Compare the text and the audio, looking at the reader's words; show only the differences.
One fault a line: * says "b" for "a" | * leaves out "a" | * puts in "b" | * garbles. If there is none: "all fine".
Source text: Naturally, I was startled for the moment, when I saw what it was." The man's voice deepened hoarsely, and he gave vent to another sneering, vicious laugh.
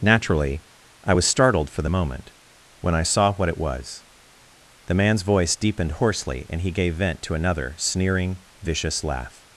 all fine